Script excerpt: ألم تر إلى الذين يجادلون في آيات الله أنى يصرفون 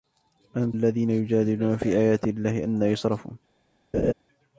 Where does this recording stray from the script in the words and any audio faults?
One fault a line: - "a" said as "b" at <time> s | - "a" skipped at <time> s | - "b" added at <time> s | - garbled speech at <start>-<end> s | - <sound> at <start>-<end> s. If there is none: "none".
- "تر إلى" skipped at 0.7 s
- laugh at 3.9-4.1 s